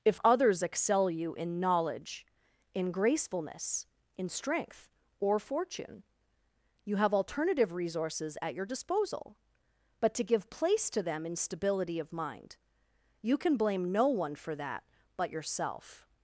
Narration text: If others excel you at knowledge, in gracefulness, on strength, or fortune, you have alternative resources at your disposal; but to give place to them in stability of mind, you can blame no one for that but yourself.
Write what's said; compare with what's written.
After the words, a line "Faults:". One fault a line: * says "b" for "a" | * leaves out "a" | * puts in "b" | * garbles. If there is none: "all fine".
If others excel you in knowledge, in gracefulness, in strength, or fortune, you have alternative resources at your disposal; but to give place to them in stability of mind, you can blame no one for that but yourself.
Faults:
* says "in" for "at"
* says "in" for "on"